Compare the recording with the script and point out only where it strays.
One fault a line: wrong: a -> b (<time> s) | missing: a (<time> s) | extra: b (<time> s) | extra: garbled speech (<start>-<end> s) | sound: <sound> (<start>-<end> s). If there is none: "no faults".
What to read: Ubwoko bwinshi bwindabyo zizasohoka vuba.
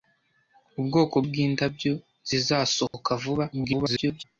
missing: bwinshi (1.1 s)
sound: dropout (2.9-2.9 s)
extra: garbled speech (3.5-4.2 s)